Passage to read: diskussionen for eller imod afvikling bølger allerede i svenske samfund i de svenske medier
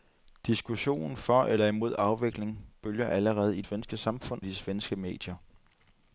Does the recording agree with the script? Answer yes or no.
yes